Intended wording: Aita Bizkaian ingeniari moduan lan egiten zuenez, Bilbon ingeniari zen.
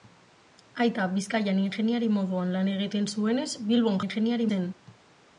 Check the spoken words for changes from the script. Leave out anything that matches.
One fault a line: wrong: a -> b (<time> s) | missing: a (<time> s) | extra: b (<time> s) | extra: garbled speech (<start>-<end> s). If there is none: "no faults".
no faults